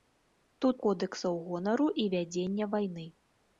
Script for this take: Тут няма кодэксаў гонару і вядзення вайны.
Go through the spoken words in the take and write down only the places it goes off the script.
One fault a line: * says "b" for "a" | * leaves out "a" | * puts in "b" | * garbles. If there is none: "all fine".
* leaves out "няма"